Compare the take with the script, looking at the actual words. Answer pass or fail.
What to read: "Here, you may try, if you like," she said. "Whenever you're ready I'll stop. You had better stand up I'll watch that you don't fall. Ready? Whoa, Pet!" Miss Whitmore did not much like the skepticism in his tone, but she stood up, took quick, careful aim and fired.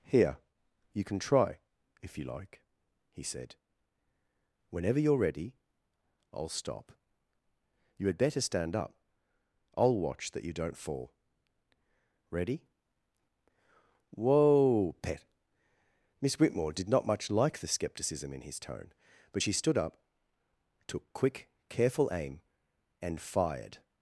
fail